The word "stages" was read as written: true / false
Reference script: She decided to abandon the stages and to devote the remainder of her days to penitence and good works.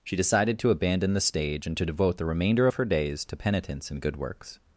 false